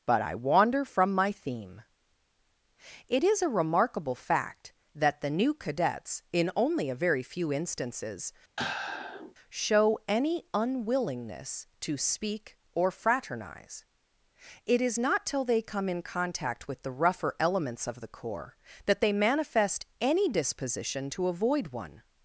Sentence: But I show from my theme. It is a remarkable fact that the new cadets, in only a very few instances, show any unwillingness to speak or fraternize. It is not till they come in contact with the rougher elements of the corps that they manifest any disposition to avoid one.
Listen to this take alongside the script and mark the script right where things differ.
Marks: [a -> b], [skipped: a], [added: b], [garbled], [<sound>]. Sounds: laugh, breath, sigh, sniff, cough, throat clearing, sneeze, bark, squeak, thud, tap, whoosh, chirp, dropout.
But I [show -> wander] from my theme. It is a remarkable fact that the new cadets, in only a very few instances, [sigh] show any unwillingness to speak or fraternize. It is not till they come in contact with the rougher elements of the corps that they manifest any disposition to avoid one.